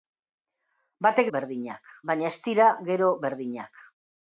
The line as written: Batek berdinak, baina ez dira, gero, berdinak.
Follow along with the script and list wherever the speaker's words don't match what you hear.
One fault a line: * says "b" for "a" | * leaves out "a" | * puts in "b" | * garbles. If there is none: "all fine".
all fine